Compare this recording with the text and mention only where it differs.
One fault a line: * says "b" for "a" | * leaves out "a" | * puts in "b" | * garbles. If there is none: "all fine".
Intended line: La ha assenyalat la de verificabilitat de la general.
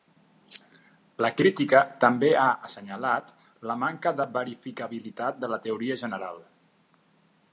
* puts in "crítica també"
* puts in "manca"
* puts in "teoria"